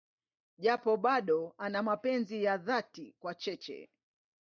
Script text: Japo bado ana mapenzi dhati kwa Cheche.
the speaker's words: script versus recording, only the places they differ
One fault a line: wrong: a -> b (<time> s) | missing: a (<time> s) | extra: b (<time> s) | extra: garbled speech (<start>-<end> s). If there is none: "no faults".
extra: ya (2.4 s)